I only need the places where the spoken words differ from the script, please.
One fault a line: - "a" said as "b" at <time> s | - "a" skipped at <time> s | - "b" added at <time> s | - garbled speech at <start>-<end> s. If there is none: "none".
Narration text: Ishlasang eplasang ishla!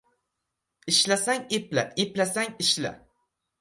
- "epla" added at 1.6 s